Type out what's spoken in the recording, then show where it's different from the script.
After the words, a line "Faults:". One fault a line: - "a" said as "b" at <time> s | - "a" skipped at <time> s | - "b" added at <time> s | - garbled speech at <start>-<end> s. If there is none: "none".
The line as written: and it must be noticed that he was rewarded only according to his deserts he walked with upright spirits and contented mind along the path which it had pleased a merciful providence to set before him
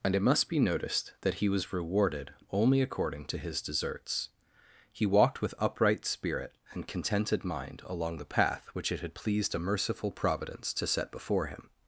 and it must be noticed that he was rewarded only according to his deserts he walked with upright spirit and contented mind along the path which it had pleased a merciful providence to set before him
Faults:
- "spirits" said as "spirit" at 6.0 s